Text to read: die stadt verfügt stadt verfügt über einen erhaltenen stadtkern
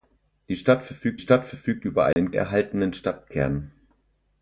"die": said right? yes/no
yes